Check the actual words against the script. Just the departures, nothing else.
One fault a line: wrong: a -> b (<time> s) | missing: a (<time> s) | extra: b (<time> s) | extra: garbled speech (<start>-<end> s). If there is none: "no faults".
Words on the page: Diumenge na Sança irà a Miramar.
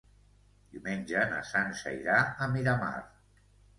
no faults